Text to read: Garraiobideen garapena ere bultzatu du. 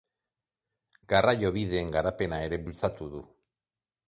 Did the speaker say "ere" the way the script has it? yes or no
yes